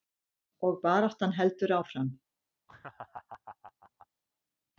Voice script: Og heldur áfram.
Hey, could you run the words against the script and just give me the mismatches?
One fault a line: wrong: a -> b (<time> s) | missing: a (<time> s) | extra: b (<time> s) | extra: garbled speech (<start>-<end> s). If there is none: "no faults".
extra: baráttan (0.8 s)